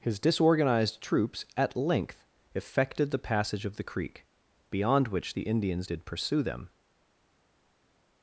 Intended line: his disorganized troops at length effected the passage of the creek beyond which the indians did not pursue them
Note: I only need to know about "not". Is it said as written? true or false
false